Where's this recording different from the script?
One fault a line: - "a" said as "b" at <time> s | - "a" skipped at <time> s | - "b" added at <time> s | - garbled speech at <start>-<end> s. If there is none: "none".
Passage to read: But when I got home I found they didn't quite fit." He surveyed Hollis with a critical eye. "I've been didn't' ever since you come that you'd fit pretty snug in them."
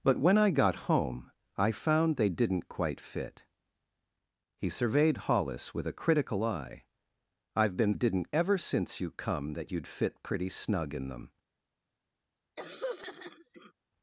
none